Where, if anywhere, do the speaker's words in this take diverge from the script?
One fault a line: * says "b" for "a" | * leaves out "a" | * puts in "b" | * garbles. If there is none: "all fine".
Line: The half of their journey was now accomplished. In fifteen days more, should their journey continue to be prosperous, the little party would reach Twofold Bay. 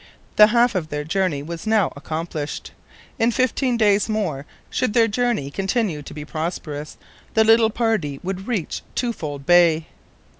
all fine